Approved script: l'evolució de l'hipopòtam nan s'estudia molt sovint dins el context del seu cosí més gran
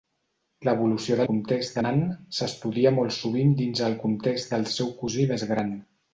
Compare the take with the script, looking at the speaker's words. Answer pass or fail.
fail